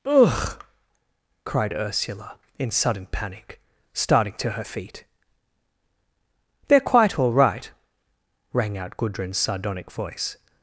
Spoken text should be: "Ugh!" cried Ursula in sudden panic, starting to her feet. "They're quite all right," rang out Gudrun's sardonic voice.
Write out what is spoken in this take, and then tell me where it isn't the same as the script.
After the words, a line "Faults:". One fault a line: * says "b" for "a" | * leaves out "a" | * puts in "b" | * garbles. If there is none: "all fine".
"Ugh!" cried Ursula in sudden panic, starting to her feet. "They're quite all right," rang out Gudrun's sardonic voice.
Faults:
all fine